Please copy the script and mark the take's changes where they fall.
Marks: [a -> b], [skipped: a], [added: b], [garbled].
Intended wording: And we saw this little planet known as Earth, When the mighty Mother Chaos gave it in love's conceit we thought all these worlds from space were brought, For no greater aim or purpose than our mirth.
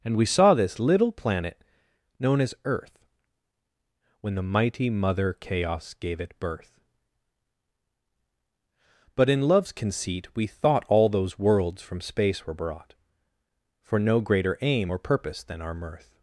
And we saw this little planet known as Earth, When the mighty Mother Chaos gave it [added: birth But] in love's conceit we thought all [these -> those] worlds from space were brought, For no greater aim or purpose than our mirth.